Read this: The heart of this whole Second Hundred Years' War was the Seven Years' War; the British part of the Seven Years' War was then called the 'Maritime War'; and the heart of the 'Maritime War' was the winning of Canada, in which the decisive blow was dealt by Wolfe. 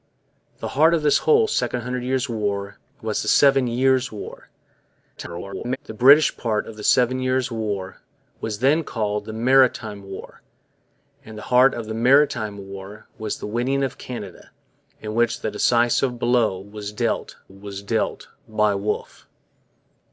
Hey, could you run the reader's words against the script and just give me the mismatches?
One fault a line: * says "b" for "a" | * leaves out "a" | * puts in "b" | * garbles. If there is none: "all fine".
* garbles
* puts in "was dealt"